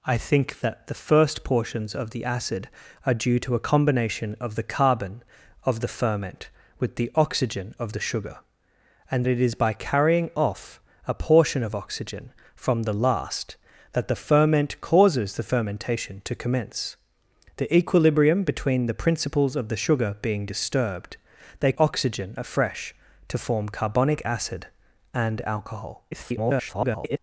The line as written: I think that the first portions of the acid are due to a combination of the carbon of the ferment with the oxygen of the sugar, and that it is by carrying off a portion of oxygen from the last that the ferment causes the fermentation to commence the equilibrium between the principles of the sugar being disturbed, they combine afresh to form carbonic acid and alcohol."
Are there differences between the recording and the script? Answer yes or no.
yes